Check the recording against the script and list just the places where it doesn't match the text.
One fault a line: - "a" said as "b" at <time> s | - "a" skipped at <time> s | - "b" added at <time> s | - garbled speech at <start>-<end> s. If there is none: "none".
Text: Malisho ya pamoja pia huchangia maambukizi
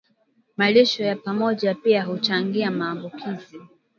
none